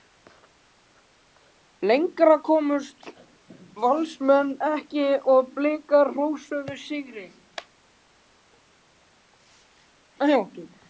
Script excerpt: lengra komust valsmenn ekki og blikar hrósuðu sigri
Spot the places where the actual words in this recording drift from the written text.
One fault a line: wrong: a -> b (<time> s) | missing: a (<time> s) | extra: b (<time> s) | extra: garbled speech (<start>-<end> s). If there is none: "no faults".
no faults